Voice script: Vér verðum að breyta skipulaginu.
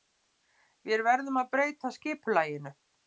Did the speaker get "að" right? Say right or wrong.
right